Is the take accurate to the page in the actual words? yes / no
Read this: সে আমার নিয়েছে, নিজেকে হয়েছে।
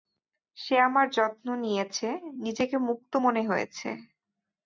no